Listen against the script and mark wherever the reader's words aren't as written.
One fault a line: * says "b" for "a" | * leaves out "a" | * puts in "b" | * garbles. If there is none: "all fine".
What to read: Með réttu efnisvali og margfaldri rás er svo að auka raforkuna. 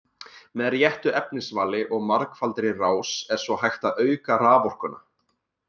* puts in "hægt"